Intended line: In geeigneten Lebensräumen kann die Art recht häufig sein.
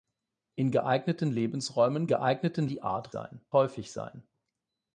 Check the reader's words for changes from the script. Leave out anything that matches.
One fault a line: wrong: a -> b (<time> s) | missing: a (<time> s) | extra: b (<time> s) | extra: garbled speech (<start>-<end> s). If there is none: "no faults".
wrong: kann -> geeigneten (2.1 s)
wrong: recht -> sein (3.1 s)